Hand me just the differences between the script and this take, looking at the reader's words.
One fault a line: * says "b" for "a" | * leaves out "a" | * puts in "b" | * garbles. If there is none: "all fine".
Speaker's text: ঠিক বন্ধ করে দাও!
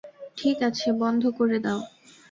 * puts in "আছে"